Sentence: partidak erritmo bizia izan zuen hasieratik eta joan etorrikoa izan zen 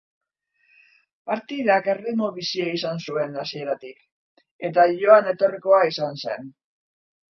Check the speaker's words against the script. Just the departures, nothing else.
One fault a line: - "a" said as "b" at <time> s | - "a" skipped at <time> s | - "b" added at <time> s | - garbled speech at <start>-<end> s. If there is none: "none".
none